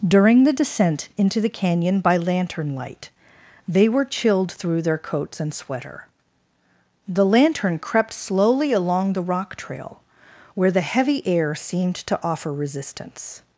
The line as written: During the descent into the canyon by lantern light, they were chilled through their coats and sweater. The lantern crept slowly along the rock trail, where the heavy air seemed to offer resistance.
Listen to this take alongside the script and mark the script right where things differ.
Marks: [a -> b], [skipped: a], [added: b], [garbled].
During the descent into the canyon by lantern light, they were chilled through their coats and sweater. The lantern crept slowly along the rock trail, where the heavy air seemed to offer resistance.